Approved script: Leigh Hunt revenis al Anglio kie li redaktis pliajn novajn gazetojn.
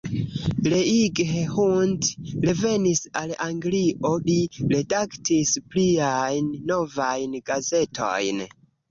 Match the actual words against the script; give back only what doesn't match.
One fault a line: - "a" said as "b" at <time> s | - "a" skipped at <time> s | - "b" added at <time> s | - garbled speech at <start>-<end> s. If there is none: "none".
- "kie" skipped at 4.1 s